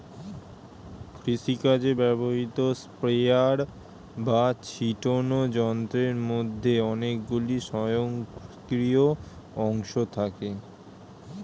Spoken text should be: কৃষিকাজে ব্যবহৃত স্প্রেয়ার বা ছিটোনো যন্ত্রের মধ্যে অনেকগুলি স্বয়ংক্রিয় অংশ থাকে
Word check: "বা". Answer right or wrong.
right